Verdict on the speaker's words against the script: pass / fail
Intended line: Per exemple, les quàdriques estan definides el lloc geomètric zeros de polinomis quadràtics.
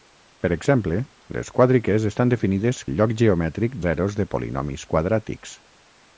pass